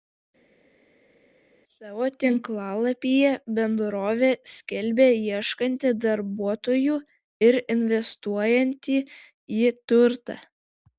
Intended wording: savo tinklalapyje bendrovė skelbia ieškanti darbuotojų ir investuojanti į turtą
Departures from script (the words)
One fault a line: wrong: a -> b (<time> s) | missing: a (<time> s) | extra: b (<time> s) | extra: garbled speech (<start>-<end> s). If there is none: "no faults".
no faults